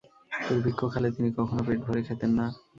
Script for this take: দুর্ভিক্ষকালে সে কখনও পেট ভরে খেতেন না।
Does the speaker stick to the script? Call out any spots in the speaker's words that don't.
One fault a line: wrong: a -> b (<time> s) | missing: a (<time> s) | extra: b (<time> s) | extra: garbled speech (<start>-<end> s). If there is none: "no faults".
wrong: সে -> তিনি (1.1 s)